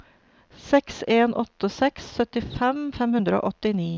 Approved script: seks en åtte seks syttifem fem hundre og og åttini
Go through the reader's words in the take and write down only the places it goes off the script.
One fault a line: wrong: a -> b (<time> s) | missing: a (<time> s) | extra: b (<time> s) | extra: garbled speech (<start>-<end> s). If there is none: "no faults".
missing: og (3.5 s)